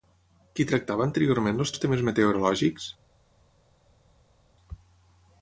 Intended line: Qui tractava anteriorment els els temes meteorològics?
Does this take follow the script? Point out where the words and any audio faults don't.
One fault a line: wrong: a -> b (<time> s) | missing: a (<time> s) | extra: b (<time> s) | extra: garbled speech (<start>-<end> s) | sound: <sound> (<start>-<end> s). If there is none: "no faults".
no faults